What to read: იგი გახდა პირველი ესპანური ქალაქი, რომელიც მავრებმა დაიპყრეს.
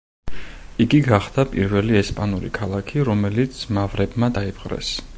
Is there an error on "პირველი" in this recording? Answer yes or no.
no